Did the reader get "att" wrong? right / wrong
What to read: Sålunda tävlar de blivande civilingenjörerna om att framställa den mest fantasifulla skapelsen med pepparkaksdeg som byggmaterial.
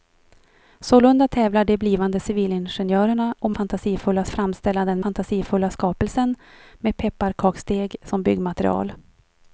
wrong